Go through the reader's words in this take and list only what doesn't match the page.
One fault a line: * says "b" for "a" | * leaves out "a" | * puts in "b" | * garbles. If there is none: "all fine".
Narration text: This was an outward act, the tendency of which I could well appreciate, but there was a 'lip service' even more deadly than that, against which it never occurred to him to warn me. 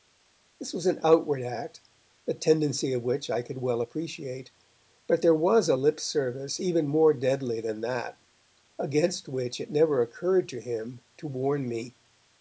all fine